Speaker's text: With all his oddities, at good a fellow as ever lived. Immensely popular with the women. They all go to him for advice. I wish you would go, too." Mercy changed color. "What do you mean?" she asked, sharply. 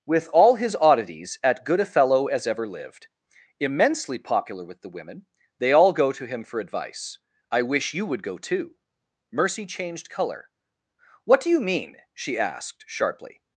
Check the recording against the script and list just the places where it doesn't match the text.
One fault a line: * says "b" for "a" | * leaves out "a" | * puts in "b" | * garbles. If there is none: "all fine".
all fine